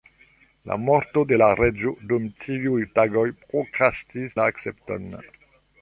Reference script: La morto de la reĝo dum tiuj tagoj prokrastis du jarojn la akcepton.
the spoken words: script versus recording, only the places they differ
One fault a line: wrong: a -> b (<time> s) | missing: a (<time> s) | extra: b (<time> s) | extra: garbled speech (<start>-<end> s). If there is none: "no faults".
missing: du jarojn (4.3 s)